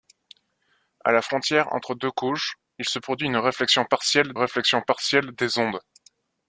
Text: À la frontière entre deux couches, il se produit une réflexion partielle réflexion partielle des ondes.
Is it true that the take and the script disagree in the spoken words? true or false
false